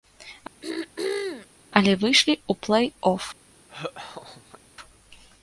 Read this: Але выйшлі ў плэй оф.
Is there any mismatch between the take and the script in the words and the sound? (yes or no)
yes